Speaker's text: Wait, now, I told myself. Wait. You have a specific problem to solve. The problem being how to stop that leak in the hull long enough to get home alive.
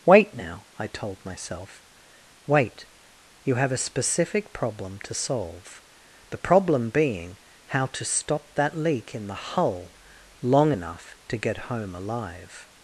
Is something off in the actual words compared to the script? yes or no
no